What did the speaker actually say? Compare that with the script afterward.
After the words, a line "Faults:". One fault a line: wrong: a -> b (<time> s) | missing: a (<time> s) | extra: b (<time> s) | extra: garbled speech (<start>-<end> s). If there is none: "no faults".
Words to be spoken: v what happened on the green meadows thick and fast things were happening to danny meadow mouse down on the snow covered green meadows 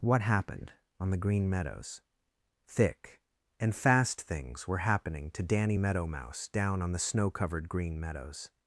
what happened on the green meadows thick and fast things were happening to danny meadow mouse down on the snow covered green meadows
Faults:
missing: v (0.0 s)